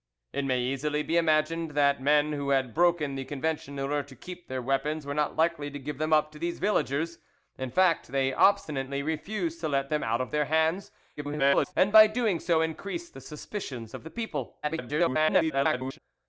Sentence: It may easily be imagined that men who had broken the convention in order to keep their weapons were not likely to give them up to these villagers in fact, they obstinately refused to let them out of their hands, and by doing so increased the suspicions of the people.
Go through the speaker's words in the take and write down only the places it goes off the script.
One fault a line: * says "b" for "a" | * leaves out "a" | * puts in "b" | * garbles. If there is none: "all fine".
* garbles
* garbles